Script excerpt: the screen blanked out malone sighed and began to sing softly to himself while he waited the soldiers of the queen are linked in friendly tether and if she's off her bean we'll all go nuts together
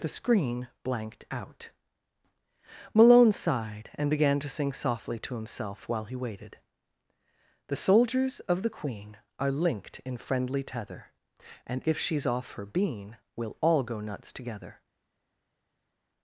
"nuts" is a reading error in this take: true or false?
false